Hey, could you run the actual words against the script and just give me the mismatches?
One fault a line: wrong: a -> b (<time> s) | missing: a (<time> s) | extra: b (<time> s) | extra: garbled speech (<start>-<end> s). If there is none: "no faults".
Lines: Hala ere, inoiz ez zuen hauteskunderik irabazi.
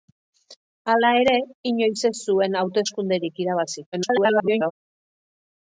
extra: garbled speech (3.9-4.7 s)